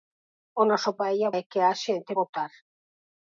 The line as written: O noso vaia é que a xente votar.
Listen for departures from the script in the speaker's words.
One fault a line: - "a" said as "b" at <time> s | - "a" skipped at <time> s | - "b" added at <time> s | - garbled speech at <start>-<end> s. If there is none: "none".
none